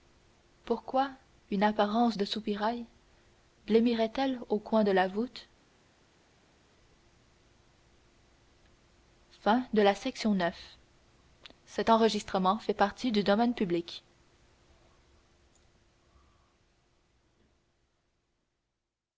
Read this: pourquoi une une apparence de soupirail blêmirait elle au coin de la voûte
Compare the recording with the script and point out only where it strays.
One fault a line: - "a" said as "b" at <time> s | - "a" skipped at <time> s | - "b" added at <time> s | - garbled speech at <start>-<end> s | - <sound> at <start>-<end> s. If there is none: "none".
- "une" skipped at 1.6 s